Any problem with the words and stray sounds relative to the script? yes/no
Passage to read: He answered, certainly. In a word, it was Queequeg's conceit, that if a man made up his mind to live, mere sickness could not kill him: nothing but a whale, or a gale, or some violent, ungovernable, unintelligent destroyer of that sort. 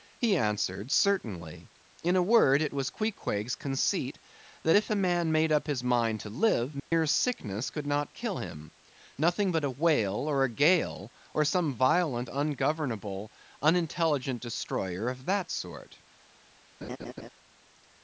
yes